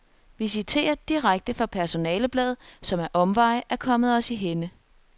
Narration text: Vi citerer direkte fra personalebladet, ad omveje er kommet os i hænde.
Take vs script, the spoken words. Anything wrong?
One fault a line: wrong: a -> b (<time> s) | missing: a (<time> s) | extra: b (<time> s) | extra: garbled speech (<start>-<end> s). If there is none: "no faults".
extra: som (2.8 s)